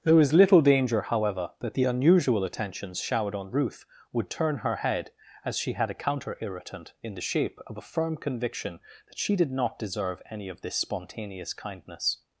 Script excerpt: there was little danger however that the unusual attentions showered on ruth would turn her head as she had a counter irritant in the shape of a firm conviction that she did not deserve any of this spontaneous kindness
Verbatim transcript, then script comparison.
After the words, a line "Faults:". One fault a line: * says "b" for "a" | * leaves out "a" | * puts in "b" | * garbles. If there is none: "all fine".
there was little danger however that the unusual attentions showered on ruth would turn her head as she had a counter irritant in the shape of a firm conviction that she did not deserve any of this spontaneous kindness
Faults:
all fine